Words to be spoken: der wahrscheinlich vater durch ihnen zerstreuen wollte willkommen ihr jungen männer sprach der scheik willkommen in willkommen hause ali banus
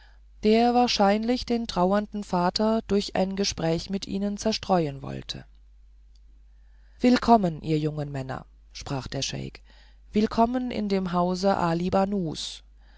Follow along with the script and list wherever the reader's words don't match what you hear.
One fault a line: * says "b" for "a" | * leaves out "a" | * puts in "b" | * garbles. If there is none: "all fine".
* puts in "den trauernden"
* puts in "ein gespräch mit"
* says "dem" for "willkommen"